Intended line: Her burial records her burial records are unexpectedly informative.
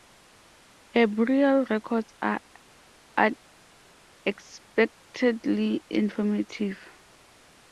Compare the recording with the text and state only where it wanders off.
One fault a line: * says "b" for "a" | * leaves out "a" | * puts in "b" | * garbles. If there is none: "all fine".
* leaves out "her burial records"